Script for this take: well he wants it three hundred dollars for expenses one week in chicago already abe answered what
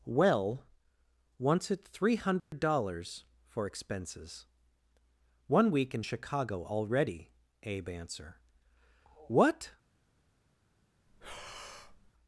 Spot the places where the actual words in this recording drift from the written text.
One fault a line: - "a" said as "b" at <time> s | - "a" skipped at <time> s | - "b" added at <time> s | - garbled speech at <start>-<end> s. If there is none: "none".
- "he" skipped at 0.7 s
- "answered" said as "answer" at 7.9 s